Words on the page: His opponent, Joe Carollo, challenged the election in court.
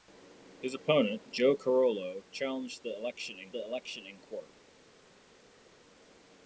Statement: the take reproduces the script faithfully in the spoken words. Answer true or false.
false